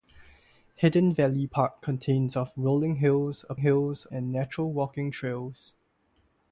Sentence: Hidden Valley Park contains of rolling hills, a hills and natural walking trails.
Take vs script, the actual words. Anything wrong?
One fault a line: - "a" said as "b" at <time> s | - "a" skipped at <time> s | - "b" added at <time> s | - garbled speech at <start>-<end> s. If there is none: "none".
none